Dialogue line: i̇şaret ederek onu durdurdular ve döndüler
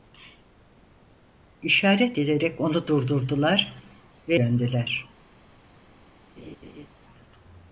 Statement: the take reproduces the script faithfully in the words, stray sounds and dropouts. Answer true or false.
false